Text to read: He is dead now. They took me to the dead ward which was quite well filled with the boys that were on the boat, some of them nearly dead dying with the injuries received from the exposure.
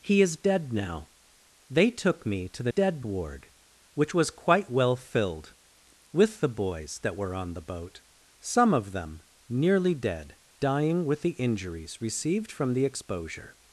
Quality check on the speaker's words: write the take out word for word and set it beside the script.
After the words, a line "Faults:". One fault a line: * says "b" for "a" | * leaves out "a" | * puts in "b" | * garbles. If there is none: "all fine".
He is dead now. They took me to the dead ward which was quite well filled with the boys that were on the boat, some of them nearly dead dying with the injuries received from the exposure.
Faults:
all fine